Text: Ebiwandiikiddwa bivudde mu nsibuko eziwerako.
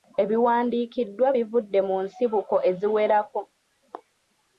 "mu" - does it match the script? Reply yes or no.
yes